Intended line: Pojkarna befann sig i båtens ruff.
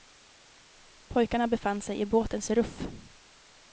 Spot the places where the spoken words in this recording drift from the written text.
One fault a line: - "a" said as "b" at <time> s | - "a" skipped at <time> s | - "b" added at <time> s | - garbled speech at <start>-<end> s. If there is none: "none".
none